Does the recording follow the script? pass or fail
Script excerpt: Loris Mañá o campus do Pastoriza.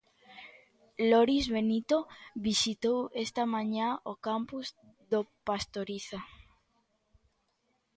fail